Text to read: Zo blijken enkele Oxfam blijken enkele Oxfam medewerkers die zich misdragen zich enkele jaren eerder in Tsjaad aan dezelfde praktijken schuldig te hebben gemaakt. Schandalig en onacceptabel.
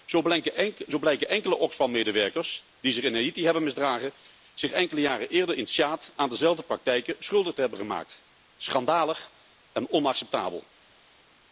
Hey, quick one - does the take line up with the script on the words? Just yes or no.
no